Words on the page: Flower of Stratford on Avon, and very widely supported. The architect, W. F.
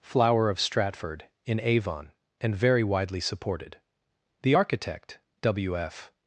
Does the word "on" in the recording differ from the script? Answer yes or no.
yes